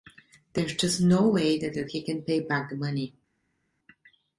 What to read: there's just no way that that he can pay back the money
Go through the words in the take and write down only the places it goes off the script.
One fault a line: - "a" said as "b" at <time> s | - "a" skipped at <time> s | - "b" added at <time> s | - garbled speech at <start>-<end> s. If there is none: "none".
none